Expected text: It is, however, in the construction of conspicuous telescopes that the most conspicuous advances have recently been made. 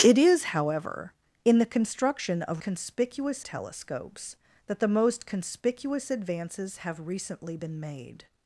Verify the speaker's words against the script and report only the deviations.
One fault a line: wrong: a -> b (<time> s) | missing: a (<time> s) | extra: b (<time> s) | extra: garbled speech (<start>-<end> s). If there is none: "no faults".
no faults